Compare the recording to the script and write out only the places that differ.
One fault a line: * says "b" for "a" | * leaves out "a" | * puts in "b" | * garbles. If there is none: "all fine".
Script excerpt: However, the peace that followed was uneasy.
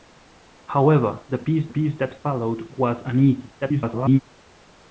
* puts in "peace"
* garbles